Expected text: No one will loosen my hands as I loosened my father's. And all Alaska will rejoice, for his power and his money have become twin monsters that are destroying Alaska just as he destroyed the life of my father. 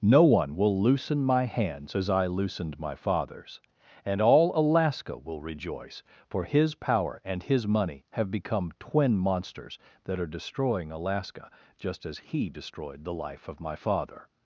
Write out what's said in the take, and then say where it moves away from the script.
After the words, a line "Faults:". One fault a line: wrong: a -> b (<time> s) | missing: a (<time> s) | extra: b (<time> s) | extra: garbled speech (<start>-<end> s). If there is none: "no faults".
No one will loosen my hands as I loosened my father's. And all Alaska will rejoice, for his power and his money have become twin monsters that are destroying Alaska just as he destroyed the life of my father.
Faults:
no faults